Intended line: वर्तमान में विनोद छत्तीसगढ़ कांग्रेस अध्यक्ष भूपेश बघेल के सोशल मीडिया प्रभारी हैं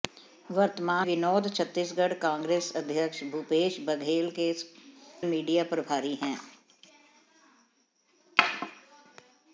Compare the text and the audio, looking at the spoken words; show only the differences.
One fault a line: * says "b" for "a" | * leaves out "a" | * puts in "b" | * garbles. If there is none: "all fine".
* leaves out "में"
* leaves out "सोशल"